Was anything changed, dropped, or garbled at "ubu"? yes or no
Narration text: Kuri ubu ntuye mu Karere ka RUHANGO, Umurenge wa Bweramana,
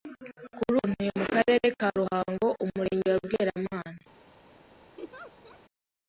yes